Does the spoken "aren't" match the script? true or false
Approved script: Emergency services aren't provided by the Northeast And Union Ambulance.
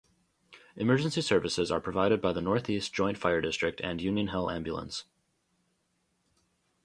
false